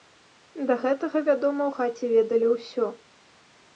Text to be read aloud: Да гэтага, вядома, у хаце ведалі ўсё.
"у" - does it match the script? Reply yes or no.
yes